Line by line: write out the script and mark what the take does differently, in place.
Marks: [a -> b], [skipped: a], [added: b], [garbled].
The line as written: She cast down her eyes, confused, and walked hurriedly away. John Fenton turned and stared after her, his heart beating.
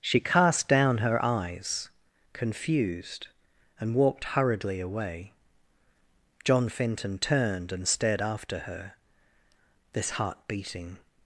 She cast down her eyes, confused, and walked hurriedly away. John Fenton turned and stared after her, [his -> this] heart beating.